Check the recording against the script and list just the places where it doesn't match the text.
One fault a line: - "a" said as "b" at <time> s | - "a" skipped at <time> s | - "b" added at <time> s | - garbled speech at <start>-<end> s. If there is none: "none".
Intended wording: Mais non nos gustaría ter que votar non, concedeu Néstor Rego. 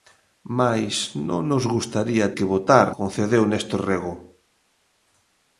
- "ter" skipped at 2.3 s
- "non" skipped at 2.9 s